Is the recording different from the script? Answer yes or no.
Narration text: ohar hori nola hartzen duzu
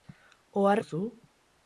yes